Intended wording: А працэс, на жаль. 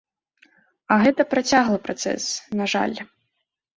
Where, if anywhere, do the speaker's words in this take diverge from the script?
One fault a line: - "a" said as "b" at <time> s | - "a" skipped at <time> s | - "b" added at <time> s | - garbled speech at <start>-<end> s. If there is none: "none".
- "гэта працяглы" added at 1.0 s